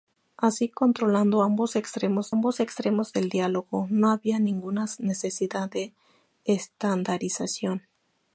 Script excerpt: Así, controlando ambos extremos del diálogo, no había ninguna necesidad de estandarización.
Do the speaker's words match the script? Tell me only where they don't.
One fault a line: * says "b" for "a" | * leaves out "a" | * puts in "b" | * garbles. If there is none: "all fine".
* puts in "ambos extremos"